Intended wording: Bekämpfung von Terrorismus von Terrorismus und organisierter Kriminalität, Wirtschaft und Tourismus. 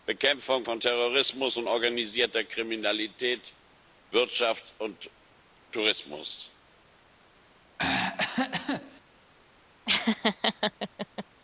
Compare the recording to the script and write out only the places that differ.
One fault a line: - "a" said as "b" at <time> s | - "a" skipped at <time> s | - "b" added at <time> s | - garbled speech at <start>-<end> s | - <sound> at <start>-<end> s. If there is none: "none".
- "von Terrorismus" skipped at 1.6 s
- throat clearing at 7.8-9.0 s
- laugh at 9.9-11.3 s